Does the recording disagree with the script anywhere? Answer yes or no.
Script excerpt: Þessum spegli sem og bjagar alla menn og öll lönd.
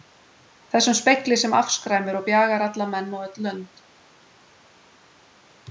yes